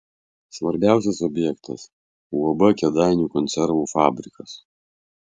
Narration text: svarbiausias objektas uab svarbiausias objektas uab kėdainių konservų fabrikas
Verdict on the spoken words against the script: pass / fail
fail